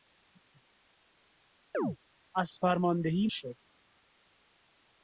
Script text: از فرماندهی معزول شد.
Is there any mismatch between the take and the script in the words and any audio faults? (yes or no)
yes